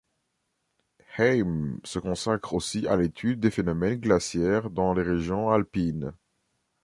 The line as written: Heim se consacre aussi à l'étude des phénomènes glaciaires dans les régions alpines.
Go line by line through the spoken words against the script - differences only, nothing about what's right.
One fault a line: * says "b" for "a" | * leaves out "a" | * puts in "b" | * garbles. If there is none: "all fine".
all fine